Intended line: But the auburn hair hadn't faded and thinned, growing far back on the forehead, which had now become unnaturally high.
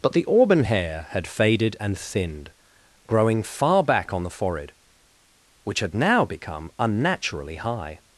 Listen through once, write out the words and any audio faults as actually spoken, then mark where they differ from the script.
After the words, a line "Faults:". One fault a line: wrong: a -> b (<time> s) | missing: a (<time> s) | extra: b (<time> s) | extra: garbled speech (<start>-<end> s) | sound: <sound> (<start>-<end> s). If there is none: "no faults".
But the auburn hair had faded and thinned, growing far back on the forehead, which had now become unnaturally high.
Faults:
wrong: hadn't -> had (1.1 s)